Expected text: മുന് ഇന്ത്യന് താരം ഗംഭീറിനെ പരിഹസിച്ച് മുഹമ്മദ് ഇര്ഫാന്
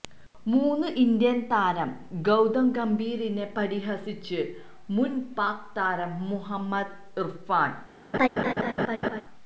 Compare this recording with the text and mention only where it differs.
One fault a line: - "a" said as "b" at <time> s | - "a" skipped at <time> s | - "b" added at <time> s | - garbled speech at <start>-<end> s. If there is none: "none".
- "ഗൌതം" added at 2.2 s
- "മുന് പാക് താരം" added at 4.9 s